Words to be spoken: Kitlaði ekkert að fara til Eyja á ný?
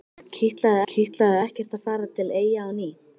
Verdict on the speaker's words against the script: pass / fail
fail